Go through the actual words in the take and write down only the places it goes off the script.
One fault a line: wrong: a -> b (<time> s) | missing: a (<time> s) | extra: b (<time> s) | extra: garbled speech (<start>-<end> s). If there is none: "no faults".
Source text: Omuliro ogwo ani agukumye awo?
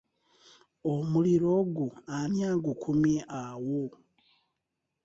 no faults